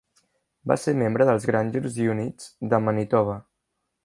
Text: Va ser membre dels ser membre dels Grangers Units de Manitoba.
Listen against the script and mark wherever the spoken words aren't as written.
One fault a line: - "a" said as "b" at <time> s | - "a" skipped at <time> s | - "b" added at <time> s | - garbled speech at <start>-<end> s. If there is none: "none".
- "ser membre dels" skipped at 1.4 s